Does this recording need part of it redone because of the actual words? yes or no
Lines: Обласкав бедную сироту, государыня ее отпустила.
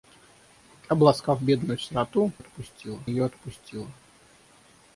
yes